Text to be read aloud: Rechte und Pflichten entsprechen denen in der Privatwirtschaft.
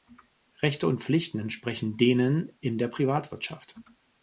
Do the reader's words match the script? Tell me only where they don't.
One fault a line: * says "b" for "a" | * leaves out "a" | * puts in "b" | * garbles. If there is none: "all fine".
all fine